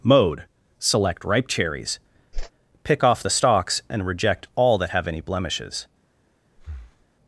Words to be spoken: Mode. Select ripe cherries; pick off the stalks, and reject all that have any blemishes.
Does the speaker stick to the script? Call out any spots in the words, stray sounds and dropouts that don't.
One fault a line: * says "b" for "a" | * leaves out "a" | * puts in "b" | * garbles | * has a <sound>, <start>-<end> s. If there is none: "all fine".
* has a whoosh, 2.3-2.5 s
* has a breath, 6.6-7.1 s